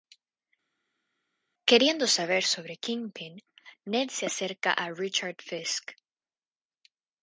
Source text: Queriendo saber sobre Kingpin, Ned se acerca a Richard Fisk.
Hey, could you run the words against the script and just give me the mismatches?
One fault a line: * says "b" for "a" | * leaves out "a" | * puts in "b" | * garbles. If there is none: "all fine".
all fine